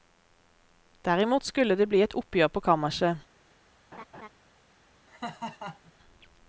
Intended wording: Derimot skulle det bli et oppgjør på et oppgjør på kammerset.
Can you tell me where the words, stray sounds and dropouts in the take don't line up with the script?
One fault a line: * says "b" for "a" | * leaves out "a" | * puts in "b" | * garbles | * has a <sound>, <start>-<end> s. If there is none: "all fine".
* leaves out "et oppgjør på"
* has a laugh, 3.9-4.3 s
* has a laugh, 5.1-5.9 s